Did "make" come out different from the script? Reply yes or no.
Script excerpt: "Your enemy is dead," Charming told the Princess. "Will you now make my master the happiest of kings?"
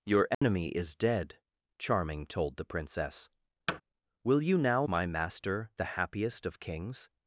yes